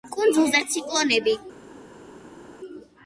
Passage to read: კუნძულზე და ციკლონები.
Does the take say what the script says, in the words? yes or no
yes